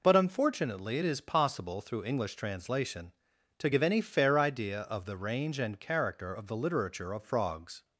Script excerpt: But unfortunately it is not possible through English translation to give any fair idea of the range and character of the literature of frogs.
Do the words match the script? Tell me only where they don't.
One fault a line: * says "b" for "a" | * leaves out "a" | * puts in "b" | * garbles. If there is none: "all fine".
* leaves out "not"